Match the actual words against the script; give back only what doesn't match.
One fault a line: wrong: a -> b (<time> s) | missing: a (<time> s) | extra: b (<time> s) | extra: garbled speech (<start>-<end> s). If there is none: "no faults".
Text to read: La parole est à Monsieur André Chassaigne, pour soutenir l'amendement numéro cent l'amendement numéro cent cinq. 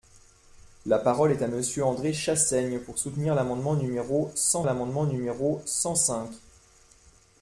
no faults